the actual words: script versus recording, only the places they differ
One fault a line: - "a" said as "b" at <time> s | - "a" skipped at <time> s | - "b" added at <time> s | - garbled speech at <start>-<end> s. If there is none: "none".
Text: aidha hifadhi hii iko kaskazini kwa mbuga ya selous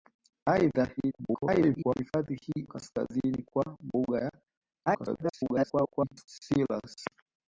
- garbled speech at 1.0-2.0 s
- "iko" skipped at 2.7 s
- garbled speech at 4.9-6.3 s